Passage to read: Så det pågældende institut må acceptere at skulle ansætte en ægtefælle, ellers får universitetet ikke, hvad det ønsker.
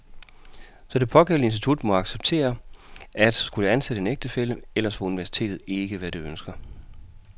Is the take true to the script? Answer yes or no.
yes